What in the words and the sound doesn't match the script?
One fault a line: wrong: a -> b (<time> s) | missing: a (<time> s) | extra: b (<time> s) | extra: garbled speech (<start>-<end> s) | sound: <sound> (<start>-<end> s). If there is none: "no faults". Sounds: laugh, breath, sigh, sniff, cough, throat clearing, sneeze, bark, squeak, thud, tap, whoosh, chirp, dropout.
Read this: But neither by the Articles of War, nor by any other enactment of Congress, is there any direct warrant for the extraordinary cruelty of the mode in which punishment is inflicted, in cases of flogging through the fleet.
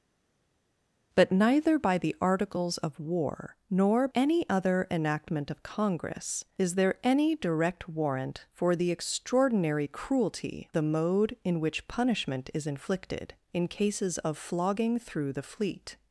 missing: by (4.1 s)
missing: of (10.7 s)